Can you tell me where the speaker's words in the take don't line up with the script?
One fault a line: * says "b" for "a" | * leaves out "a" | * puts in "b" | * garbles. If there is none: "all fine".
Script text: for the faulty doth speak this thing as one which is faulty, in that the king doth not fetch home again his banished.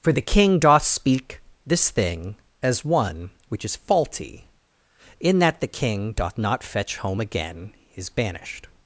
* says "king" for "faulty"